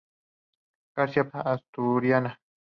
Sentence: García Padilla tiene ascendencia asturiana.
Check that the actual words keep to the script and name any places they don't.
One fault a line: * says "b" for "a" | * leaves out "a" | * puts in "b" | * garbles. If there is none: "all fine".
* leaves out "Padilla tiene ascendencia"